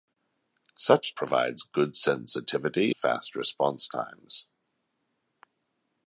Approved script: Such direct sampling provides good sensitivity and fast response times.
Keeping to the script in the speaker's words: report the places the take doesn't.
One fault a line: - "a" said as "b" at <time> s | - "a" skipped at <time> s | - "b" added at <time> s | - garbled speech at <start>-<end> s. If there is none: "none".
- "direct sampling" skipped at 1.1 s
- "and" skipped at 2.9 s